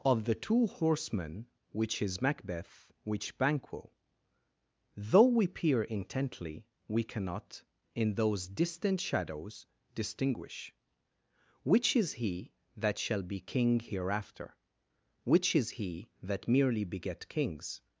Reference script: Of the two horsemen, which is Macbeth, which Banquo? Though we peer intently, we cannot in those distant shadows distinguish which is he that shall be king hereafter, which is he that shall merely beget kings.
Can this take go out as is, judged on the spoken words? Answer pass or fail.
fail